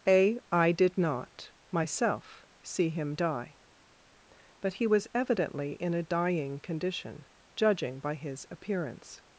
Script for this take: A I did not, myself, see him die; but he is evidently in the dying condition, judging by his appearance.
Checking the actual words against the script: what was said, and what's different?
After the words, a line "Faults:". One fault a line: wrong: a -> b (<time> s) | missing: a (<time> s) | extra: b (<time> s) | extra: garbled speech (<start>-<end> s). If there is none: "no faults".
A I did not, myself, see him die; but he was evidently in a dying condition, judging by his appearance.
Faults:
wrong: is -> was (4.9 s)
wrong: the -> a (5.9 s)